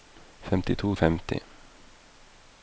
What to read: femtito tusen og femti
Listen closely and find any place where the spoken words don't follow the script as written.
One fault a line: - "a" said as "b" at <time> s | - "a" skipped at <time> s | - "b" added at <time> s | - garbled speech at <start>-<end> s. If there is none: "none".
- "tusen" skipped at 0.9 s